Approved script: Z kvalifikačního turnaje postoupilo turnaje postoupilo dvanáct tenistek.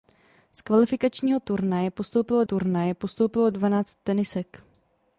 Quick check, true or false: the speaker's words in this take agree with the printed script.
true